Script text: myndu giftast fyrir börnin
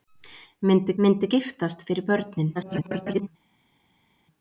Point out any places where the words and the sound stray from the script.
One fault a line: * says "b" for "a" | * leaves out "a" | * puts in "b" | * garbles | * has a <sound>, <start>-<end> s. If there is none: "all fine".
* puts in "myndu"
* garbles